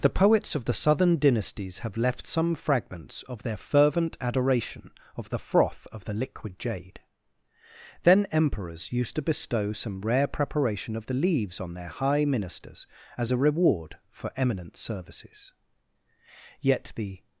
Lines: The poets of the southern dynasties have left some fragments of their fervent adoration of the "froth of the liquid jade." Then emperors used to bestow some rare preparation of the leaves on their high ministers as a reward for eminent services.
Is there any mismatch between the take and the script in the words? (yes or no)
yes